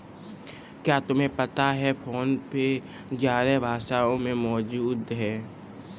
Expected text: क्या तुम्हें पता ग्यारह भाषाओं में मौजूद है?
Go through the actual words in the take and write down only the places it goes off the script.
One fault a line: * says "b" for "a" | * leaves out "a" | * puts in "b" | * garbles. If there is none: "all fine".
* puts in "है फोन पे"